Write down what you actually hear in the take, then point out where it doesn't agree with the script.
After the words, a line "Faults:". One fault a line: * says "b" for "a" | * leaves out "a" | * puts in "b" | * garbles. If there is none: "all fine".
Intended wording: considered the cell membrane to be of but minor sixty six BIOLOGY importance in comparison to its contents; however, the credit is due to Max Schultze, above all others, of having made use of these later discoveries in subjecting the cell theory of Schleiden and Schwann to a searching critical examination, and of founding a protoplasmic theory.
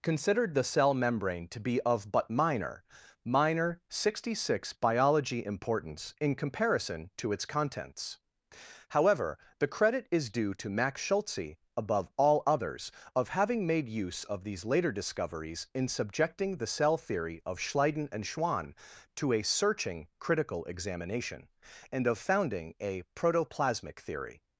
considered the cell membrane to be of but minor minor sixty six BIOLOGY importance in comparison to its contents; however, the credit is due to Max Schultze, above all others, of having made use of these later discoveries in subjecting the cell theory of Schleiden and Schwann to a searching critical examination, and of founding a protoplasmic theory.
Faults:
* puts in "minor"